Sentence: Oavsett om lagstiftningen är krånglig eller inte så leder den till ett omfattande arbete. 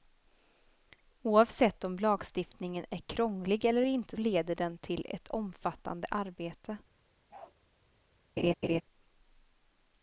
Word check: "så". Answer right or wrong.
wrong